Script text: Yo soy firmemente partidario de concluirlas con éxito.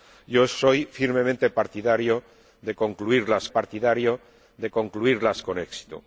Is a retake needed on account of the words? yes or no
yes